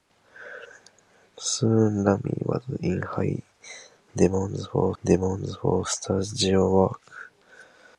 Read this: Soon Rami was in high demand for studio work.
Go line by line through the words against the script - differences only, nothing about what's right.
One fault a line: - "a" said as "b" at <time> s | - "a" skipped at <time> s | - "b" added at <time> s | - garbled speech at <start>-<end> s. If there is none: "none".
- "demand for" added at 5.0 s